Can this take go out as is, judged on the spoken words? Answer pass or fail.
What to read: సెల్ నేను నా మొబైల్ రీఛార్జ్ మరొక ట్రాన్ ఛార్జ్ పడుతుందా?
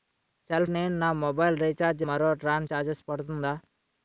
pass